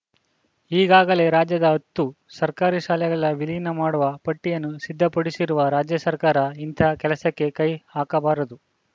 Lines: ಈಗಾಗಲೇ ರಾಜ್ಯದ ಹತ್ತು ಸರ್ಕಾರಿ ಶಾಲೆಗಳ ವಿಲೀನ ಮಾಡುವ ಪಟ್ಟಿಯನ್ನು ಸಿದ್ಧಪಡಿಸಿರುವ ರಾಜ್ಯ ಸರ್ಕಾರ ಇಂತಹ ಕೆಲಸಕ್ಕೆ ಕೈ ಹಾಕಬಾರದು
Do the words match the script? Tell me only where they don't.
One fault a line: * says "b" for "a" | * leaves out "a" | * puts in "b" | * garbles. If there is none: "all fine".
all fine